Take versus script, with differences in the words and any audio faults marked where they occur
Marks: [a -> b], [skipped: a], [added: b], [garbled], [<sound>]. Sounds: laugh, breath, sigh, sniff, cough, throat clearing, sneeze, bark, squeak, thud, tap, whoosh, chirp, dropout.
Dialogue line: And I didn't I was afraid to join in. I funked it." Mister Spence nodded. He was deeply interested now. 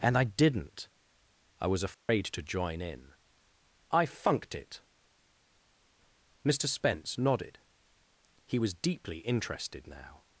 And I didn't I was afraid [dropout] to join in. I funked it." Mister Spence nodded. He was deeply interested now.